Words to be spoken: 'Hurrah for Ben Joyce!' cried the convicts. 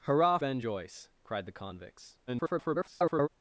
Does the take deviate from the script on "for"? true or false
true